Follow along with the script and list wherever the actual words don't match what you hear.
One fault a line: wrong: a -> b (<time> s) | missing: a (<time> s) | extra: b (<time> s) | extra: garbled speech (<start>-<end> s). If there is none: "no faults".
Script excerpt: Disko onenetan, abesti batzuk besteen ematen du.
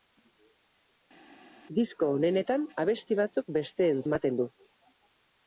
no faults